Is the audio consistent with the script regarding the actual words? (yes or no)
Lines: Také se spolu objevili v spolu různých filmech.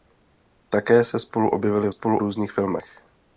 yes